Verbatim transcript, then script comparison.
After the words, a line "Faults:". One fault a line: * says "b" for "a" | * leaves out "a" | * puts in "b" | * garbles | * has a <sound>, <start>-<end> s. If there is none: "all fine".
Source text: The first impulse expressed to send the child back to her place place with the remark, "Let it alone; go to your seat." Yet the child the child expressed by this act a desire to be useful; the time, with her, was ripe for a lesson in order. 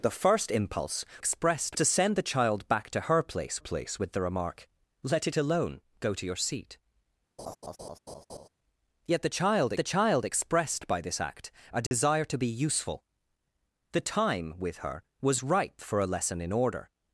The first impulse expressed to send the child back to her place place with the remark, "Let it alone; go to your seat." Yet the child the child expressed by this act a desire to be useful; the time, with her, was ripe for a lesson in order.
Faults:
* has a laugh, 7.4-8.5 s
* has a dropout, 11.9-11.9 s